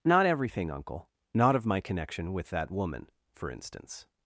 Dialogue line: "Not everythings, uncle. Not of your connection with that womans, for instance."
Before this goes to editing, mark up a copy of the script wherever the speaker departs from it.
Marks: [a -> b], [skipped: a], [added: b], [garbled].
"Not [everythings, -> everything] uncle. Not of [your -> my] connection with that [womans, -> woman] for instance."